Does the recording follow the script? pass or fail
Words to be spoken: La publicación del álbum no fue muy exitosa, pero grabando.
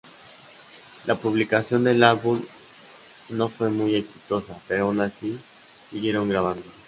fail